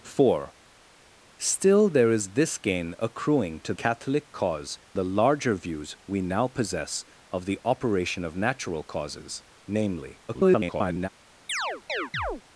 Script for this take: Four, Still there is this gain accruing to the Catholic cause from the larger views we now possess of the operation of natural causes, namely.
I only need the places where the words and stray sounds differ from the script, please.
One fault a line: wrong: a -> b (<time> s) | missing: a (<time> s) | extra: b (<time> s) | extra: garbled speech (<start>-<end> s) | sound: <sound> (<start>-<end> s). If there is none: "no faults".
missing: the (3.7 s)
missing: from (4.8 s)
extra: garbled speech (10.3-11.1 s)
sound: chirp (11.5-12.4 s)